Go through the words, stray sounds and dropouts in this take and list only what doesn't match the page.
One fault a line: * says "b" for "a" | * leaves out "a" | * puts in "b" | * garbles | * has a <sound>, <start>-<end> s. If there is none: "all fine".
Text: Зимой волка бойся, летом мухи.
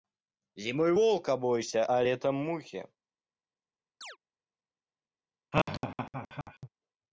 * puts in "а"
* has a chirp, 4.0-4.2 s
* has a laugh, 5.5-6.7 s